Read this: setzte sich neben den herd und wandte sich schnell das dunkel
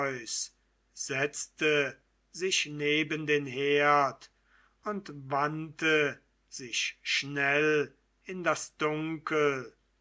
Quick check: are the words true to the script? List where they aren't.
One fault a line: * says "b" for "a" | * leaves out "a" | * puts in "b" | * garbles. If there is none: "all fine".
* puts in "in"